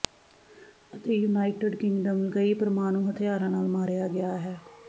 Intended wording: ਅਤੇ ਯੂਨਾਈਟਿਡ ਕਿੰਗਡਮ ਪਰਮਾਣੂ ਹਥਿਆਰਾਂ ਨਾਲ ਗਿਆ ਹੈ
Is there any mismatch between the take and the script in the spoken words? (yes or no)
yes